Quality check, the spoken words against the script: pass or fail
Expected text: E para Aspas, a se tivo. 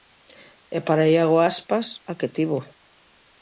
fail